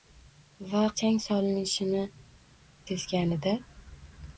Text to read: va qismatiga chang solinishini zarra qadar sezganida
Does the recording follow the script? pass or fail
fail